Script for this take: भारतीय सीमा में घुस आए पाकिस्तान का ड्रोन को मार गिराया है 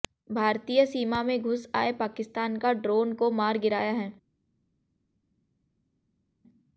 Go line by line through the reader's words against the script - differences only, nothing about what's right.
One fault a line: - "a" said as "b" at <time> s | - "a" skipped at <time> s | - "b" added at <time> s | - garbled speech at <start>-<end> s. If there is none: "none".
none